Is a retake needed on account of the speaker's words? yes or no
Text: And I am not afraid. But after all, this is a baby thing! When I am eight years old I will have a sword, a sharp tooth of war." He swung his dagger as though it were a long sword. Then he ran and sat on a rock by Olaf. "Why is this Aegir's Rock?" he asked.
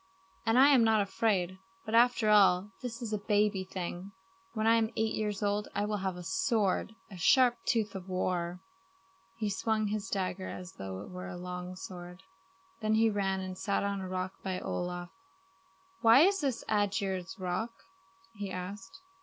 no